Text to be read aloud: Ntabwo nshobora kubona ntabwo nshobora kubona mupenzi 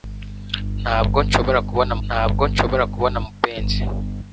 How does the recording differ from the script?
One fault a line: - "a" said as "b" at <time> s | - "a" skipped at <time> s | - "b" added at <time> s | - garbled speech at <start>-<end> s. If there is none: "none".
none